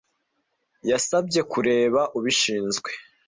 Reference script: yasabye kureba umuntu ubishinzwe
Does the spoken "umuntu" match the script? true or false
false